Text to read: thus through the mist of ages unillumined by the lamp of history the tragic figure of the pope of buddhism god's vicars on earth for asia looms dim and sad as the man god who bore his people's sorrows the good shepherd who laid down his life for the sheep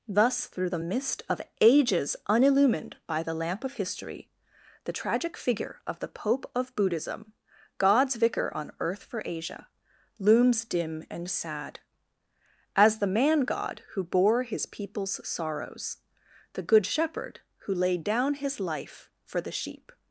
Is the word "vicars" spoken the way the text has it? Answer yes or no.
no